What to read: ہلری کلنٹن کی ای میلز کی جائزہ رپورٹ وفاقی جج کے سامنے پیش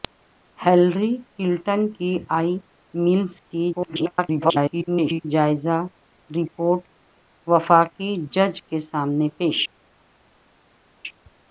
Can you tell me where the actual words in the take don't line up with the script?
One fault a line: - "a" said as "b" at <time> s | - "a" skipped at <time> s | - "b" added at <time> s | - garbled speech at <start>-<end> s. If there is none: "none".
- garbled speech at 3.7-5.3 s